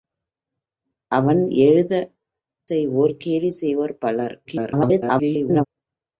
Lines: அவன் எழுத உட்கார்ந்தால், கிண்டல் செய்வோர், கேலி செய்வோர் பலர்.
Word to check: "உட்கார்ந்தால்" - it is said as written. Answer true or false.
false